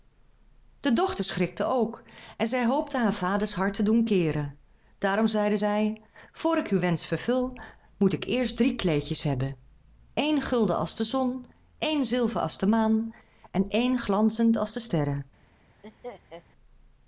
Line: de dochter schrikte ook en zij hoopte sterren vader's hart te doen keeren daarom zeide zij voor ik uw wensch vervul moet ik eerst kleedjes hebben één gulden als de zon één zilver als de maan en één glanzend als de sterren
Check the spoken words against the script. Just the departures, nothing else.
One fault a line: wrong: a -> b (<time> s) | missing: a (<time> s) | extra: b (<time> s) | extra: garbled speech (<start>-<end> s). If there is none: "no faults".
wrong: sterren -> haar (3.0 s)
extra: drie (8.6 s)